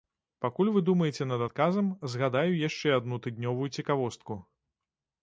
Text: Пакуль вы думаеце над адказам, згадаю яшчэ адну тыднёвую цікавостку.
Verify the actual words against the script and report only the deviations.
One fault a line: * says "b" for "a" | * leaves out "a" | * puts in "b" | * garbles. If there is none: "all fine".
all fine